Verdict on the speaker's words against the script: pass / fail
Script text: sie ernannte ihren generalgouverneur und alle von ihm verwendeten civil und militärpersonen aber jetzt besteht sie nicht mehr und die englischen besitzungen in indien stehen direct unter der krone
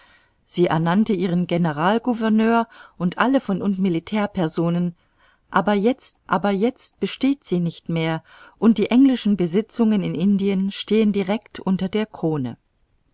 fail